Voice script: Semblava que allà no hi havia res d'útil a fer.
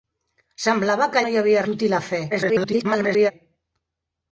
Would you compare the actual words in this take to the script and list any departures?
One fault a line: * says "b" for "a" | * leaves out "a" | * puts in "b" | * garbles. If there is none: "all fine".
* leaves out "allà"
* leaves out "res"
* garbles